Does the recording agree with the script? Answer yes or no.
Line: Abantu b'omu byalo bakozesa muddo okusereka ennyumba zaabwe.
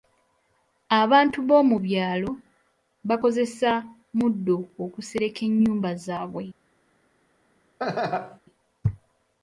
yes